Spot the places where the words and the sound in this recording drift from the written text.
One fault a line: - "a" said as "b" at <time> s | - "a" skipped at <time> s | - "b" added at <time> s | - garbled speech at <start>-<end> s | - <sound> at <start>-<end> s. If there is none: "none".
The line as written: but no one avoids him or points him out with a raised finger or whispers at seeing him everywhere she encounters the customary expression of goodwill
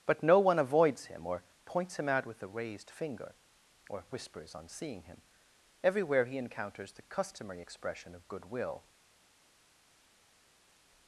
- "at" said as "on" at 4.5 s
- "she" said as "he" at 6.2 s